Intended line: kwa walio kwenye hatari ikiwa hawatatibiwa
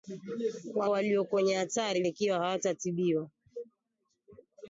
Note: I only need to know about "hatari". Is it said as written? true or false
true